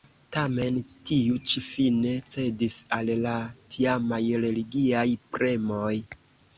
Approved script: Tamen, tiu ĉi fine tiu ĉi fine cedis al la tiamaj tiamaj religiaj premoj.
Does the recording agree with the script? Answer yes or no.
no